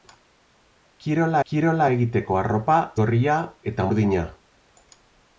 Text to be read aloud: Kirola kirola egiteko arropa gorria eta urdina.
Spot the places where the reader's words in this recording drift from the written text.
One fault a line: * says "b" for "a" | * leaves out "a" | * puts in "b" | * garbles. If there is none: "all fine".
all fine